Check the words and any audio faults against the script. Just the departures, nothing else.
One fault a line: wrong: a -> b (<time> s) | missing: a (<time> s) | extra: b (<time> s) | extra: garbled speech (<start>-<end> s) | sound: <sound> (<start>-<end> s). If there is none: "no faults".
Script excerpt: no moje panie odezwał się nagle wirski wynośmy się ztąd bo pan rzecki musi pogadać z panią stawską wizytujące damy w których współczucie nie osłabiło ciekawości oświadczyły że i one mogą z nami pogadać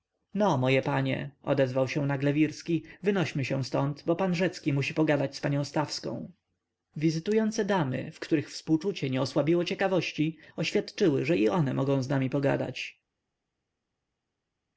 no faults